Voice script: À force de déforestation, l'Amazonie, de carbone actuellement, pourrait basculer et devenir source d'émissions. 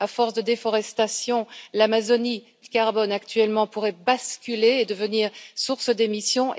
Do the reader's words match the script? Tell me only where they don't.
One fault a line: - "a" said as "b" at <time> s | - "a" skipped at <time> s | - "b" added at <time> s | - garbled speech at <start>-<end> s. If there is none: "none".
none